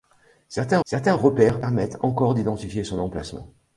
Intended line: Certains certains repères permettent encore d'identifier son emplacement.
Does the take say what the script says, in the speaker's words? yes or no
yes